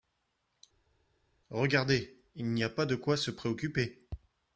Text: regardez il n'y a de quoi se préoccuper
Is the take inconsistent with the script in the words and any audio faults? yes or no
yes